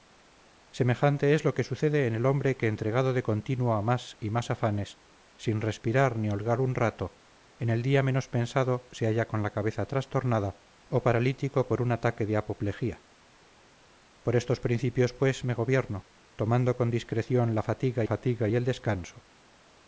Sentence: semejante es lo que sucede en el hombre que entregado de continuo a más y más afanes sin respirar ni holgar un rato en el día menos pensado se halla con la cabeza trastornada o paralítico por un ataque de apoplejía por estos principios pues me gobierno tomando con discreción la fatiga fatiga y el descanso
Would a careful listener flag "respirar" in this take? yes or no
no